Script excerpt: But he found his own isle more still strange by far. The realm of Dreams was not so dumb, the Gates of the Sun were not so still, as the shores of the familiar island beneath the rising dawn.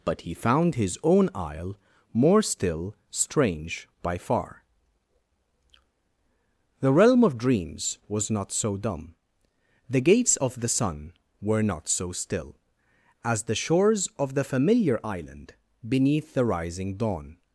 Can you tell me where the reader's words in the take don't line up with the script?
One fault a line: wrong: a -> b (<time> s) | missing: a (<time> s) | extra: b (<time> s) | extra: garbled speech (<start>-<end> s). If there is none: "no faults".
no faults